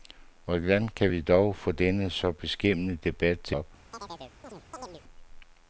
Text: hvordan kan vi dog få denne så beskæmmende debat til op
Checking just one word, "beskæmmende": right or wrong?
right